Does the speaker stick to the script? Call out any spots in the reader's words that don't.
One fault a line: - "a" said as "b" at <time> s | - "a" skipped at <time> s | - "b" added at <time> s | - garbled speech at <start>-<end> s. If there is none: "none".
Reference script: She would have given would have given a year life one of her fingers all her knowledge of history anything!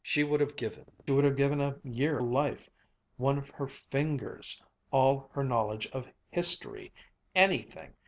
none